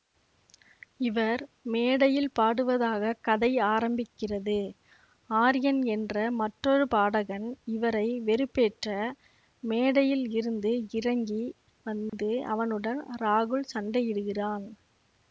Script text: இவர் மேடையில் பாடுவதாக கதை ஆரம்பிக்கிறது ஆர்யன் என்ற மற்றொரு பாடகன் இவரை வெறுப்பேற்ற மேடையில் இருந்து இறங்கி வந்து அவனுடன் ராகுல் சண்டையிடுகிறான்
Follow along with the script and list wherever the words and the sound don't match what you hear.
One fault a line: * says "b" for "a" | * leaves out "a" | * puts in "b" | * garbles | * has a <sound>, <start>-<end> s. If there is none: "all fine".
* has a dropout, 12.1-12.1 s